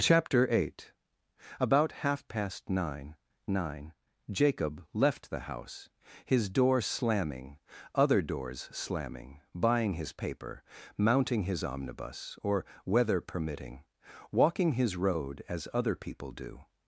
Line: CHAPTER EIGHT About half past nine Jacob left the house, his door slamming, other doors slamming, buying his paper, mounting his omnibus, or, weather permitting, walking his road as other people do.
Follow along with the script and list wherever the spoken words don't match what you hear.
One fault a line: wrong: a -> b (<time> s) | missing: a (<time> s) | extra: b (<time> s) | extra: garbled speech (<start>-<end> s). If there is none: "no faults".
extra: nine (3.5 s)